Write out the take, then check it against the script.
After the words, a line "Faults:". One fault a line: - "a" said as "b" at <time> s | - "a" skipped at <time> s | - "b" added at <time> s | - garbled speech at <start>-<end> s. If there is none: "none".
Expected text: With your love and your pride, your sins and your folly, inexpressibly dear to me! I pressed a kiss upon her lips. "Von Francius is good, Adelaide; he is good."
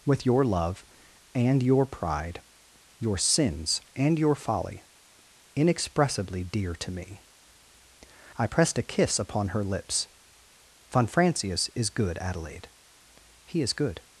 With your love and your pride, your sins and your folly, inexpressibly dear to me! I pressed a kiss upon her lips. "Von Francius is good, Adelaide; he is good."
Faults:
none